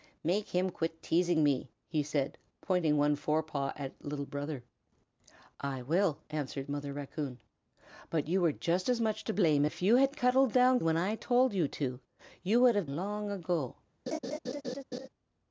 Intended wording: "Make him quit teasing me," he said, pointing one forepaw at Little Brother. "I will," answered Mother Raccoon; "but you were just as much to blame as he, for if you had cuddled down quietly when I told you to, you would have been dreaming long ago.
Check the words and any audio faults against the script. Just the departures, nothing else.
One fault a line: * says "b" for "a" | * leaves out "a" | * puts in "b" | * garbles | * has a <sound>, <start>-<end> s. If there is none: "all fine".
* leaves out "as he for"
* leaves out "quietly"
* leaves out "been dreaming"
* has a laugh, 14.1-15.1 s